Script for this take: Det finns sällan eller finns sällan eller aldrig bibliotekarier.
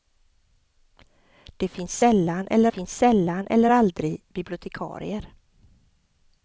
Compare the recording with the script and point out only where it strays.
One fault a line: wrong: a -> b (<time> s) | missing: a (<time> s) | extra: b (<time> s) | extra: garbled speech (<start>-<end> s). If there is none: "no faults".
no faults